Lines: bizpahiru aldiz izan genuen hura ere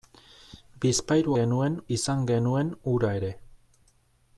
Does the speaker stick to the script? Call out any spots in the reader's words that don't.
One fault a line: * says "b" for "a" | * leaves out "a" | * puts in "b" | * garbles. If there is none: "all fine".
* says "genuen" for "aldiz"